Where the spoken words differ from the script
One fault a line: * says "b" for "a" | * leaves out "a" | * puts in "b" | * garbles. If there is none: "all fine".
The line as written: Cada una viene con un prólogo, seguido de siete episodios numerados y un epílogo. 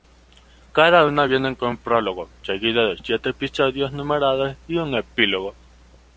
all fine